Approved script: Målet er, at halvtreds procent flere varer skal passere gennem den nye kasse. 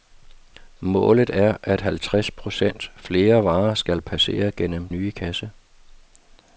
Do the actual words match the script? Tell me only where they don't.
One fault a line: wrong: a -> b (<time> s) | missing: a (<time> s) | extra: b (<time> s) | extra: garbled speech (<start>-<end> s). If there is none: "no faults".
missing: den (4.9 s)